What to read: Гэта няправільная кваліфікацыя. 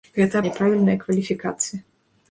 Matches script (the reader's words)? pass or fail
pass